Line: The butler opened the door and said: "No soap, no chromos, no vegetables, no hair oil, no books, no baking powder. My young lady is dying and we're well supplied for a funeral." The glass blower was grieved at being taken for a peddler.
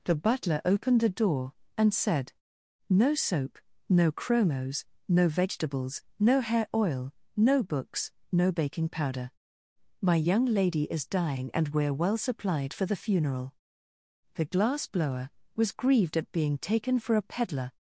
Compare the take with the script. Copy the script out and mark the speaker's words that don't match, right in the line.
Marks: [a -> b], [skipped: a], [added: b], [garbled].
The butler opened the door and said: "No soap, no chromos, no vegetables, no hair oil, no books, no baking powder. My young lady is dying and we're well supplied for [a -> the] funeral." The glass blower was grieved at being taken for a peddler.